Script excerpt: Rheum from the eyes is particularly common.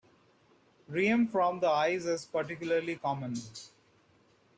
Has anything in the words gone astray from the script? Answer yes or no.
no